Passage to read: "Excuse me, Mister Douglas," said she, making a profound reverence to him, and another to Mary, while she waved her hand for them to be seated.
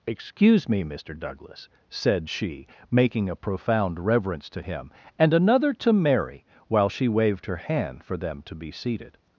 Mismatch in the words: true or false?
false